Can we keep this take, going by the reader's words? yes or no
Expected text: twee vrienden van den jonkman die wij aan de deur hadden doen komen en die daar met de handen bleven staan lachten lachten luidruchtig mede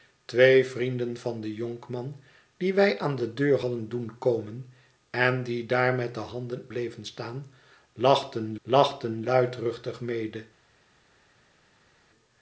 yes